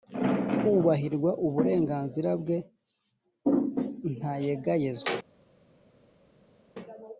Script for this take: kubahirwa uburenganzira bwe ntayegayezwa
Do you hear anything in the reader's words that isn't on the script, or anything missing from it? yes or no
no